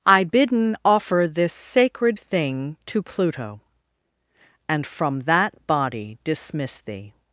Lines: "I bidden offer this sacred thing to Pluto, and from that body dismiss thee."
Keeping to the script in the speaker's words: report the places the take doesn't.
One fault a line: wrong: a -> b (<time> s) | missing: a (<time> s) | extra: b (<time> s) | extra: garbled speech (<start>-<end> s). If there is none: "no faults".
no faults